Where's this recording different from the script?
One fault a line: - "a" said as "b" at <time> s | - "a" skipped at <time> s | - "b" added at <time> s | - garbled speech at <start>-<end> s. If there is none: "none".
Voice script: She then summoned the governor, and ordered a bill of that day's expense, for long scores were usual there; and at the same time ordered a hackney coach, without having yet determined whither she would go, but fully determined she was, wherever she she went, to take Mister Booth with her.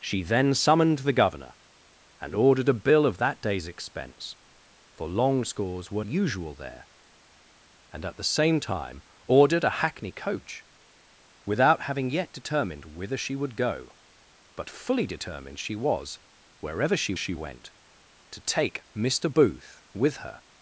none